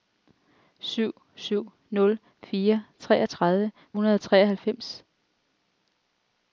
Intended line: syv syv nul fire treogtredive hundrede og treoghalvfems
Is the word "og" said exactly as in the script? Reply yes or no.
yes